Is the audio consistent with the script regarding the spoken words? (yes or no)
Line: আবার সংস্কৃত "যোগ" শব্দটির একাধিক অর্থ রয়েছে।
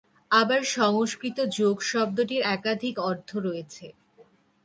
yes